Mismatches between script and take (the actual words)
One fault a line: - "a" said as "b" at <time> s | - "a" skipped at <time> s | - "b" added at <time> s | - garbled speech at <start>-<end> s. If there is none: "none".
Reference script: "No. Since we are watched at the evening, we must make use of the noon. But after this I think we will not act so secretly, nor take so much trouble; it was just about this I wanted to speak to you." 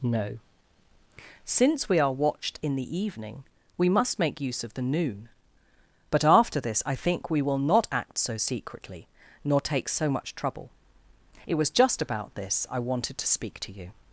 - "at" said as "in" at 2.6 s